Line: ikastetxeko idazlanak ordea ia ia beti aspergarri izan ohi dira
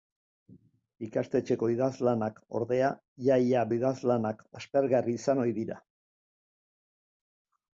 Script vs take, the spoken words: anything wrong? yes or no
yes